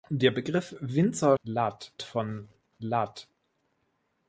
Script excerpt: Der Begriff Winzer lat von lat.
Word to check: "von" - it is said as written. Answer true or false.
true